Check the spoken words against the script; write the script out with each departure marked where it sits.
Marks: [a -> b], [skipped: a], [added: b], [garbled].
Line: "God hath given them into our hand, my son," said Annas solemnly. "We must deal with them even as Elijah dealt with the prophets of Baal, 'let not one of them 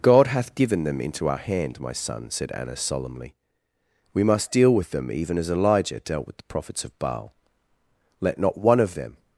"God hath given them into our hand, my son," said Annas solemnly. "We must deal with them even as Elijah dealt with the prophets of Baal, 'let not one of them